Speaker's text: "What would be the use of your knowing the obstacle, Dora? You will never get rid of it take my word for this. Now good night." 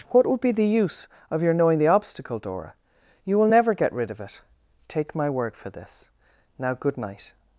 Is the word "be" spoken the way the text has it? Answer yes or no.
yes